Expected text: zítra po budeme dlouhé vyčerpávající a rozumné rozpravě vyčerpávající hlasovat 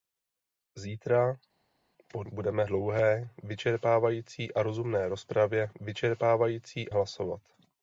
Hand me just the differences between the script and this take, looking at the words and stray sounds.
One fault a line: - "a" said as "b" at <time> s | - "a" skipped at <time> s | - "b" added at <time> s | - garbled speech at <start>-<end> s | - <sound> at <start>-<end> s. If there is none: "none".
none